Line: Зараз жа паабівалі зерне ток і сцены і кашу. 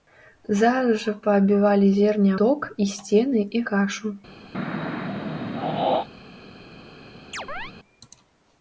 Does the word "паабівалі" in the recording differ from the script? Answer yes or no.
no